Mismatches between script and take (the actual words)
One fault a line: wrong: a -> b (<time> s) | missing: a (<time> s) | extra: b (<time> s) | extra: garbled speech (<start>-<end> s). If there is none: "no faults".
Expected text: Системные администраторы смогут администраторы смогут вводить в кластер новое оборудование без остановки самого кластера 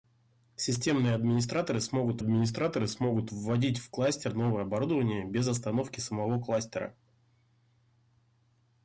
no faults